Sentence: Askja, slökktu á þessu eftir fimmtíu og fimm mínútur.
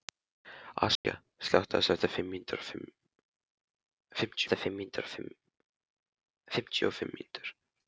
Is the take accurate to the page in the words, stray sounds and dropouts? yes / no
no